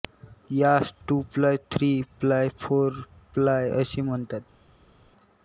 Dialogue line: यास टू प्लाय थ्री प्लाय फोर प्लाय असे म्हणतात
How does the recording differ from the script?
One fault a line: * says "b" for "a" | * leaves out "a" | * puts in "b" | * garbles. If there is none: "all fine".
all fine